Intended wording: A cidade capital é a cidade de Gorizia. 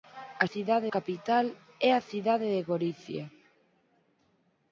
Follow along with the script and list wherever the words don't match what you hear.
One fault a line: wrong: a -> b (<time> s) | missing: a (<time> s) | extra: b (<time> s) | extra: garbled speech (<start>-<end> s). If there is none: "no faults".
no faults